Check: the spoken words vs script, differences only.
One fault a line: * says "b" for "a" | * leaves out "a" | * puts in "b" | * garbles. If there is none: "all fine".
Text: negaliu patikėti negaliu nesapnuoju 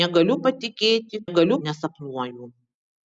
all fine